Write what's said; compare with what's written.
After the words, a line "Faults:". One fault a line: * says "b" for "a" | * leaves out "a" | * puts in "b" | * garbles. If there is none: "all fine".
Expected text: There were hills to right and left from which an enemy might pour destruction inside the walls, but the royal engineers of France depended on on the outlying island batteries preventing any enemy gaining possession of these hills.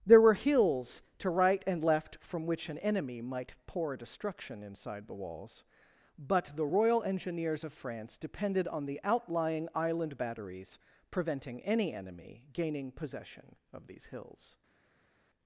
There were hills to right and left from which an enemy might pour destruction inside the walls, but the royal engineers of France depended on the outlying island batteries preventing any enemy gaining possession of these hills.
Faults:
* leaves out "on"